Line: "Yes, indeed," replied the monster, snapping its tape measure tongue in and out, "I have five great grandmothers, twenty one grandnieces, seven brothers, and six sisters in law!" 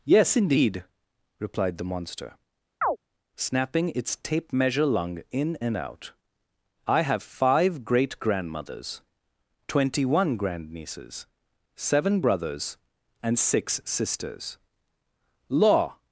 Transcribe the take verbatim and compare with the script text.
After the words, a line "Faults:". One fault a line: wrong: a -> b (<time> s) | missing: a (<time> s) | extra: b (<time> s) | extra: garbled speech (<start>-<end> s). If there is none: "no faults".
"Yes, indeed," replied the monster, snapping its tape measure lung in and out, "I have five great grandmothers, twenty one grandnieces, seven brothers, and six sisters law!"
Faults:
wrong: tongue -> lung (4.8 s)
missing: in (14.6 s)